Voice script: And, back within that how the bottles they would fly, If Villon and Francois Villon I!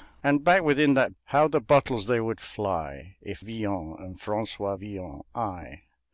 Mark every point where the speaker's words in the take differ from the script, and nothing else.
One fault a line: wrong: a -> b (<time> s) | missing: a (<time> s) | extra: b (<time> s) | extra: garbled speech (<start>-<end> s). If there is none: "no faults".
no faults